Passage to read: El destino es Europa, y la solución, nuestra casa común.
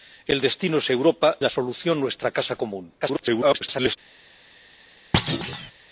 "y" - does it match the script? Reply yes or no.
no